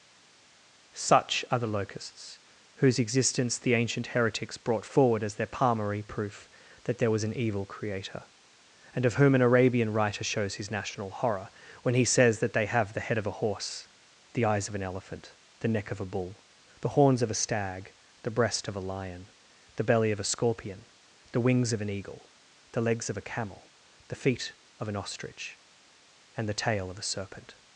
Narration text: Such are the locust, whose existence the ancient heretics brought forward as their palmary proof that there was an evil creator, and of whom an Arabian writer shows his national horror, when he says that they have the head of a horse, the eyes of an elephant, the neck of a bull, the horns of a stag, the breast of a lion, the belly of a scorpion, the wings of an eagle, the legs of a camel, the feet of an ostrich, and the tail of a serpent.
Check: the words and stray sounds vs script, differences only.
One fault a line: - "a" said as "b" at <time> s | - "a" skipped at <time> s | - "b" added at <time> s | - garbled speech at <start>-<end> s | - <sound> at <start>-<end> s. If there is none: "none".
- "locust" said as "locusts" at 1.7 s